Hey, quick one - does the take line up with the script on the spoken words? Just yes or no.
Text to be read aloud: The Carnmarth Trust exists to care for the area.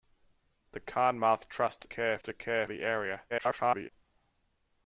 no